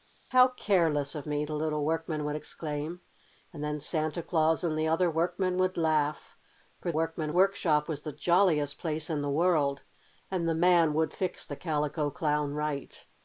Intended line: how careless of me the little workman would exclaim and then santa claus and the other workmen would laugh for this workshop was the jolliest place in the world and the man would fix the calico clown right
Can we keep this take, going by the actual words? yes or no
no